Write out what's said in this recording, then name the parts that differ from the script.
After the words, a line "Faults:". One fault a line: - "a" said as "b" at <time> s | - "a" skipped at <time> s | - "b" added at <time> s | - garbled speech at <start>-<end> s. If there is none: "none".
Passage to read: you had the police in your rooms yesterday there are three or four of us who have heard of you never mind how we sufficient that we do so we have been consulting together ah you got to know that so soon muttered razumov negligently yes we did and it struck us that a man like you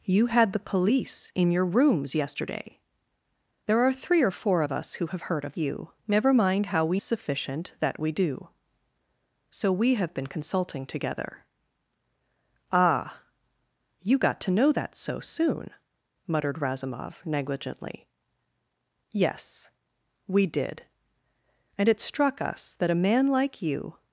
you had the police in your rooms yesterday there are three or four of us who have heard of you never mind how we sufficient that we do so we have been consulting together ah you got to know that so soon muttered razumov negligently yes we did and it struck us that a man like you
Faults:
none